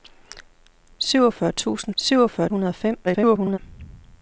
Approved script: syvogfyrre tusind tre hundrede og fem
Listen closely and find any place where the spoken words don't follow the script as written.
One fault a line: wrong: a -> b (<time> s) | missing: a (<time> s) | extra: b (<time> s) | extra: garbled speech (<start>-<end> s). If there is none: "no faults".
wrong: tre -> syvogfyrre (2.0 s)
extra: garbled speech (3.0-3.6 s)